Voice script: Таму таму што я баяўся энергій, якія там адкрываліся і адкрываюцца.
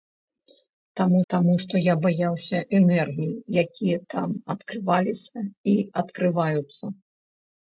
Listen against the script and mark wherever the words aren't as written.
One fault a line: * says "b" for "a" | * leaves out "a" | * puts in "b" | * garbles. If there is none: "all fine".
all fine